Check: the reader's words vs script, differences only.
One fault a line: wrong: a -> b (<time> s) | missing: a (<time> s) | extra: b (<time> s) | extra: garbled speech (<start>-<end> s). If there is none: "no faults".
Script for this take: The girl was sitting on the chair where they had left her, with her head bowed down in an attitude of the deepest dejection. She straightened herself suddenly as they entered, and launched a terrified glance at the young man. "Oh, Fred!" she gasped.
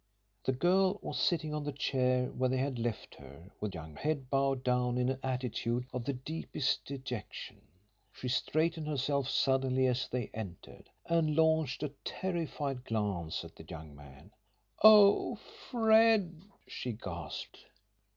wrong: her -> young (3.7 s)